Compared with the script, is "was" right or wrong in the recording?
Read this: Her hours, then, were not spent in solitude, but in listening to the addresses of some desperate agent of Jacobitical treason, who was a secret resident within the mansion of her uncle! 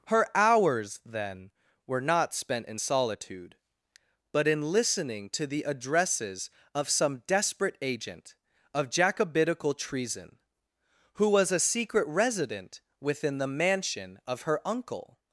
right